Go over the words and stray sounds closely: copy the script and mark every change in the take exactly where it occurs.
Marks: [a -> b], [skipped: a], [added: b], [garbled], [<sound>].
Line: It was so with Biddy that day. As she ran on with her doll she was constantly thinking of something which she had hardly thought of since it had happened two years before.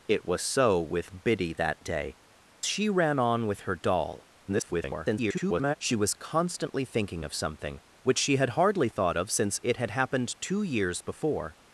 It was so with Biddy that day. [skipped: As] she ran on with her doll [garbled] she was constantly thinking of something which she had hardly thought of since it had happened two years before.